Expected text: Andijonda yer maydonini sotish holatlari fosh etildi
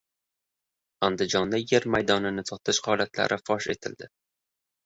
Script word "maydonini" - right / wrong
right